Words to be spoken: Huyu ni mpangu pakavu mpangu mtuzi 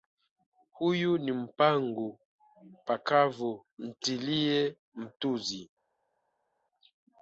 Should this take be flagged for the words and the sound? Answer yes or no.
yes